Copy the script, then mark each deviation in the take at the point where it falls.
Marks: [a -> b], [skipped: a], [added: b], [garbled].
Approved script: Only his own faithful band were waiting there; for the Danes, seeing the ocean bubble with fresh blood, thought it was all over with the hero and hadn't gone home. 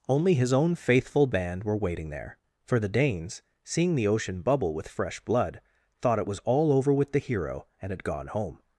Only his own faithful band were waiting there; for the Danes, seeing the ocean bubble with fresh blood, thought it was all over with the hero and [hadn't -> had] gone home.